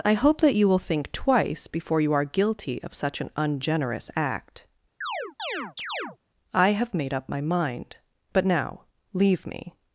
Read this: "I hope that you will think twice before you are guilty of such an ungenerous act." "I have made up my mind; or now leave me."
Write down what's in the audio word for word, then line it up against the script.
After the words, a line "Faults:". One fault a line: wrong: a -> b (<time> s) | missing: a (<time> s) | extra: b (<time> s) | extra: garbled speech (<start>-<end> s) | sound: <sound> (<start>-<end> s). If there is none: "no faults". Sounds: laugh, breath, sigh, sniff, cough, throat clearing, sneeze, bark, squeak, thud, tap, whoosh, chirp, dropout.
"I hope that you will think twice before you are guilty of such an ungenerous act." "I have made up my mind; but now leave me."
Faults:
sound: chirp (5.0-6.2 s)
wrong: or -> but (8.3 s)